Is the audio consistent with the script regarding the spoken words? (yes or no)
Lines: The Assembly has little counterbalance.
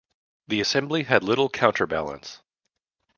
no